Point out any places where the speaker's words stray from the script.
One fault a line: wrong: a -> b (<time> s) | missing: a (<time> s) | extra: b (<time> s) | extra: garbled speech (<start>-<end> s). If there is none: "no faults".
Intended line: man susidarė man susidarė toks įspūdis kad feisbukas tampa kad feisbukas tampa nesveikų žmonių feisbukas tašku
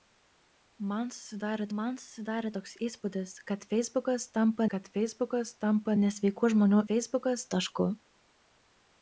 no faults